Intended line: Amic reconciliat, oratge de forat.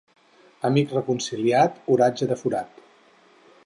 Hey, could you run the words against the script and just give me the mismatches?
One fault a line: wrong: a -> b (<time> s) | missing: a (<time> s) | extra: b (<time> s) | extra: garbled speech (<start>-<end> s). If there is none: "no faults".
no faults